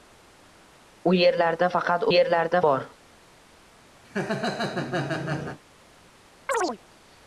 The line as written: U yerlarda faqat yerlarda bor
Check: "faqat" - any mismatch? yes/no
no